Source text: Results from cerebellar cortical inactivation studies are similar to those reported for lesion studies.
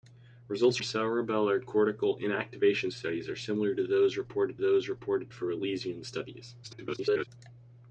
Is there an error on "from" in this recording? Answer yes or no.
yes